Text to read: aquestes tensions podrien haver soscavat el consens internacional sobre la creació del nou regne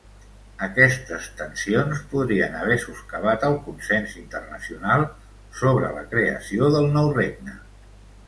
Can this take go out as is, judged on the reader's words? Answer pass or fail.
pass